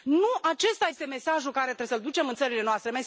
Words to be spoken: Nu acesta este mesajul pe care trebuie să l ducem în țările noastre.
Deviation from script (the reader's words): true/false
false